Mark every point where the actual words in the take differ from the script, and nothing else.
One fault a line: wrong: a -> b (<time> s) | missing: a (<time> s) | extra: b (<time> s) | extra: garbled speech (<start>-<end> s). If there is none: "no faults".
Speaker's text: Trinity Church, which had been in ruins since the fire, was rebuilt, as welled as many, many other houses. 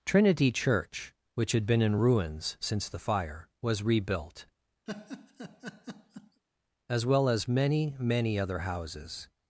wrong: welled -> well (7.0 s)